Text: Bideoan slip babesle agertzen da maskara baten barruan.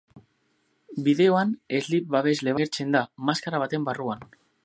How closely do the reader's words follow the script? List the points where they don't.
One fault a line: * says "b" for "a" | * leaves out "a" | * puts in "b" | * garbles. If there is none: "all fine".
all fine